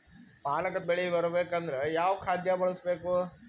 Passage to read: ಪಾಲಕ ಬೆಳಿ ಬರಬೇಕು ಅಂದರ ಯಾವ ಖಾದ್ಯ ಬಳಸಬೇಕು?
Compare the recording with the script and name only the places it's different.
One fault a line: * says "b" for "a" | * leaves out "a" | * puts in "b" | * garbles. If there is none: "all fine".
all fine